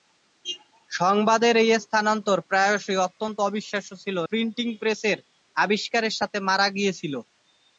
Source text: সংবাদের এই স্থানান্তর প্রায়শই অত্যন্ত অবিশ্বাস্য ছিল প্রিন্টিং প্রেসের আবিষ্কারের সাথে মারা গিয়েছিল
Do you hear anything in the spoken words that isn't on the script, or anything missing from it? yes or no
no